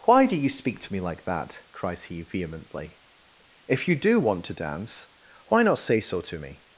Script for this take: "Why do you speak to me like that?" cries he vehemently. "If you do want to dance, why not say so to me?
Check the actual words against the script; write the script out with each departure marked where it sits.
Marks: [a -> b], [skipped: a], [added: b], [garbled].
"Why do you speak to me like that?" cries he vehemently. "If you do want to dance, why not say so to me?